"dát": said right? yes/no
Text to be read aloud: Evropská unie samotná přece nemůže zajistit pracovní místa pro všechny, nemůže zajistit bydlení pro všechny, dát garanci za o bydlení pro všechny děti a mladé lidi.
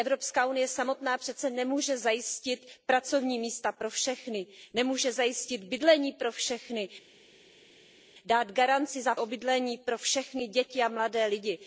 yes